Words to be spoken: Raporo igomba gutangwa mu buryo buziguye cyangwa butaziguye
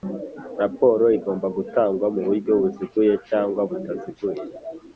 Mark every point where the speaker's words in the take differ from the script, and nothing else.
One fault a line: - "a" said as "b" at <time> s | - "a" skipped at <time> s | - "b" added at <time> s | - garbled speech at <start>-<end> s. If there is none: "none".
none